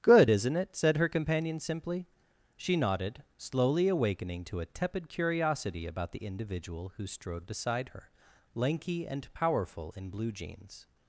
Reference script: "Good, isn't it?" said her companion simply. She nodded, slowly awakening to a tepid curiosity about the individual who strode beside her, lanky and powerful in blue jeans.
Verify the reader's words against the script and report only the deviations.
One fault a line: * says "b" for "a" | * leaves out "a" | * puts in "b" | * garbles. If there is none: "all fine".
all fine